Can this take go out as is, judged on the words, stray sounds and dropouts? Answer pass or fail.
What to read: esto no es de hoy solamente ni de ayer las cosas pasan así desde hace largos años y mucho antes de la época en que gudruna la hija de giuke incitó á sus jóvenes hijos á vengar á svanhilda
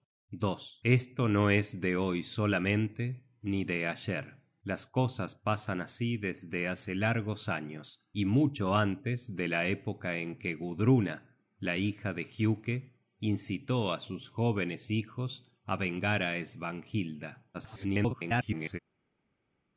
fail